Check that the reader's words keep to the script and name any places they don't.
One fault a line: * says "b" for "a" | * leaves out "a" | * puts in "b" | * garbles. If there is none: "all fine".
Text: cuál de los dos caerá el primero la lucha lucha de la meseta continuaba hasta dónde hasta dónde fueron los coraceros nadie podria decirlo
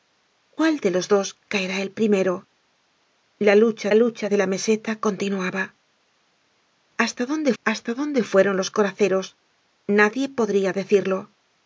all fine